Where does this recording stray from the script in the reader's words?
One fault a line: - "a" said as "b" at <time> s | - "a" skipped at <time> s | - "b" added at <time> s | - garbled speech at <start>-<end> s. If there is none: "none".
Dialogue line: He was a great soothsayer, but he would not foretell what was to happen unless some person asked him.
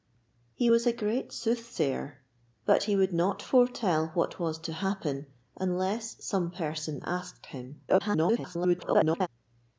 - garbled speech at 7.9-9.3 s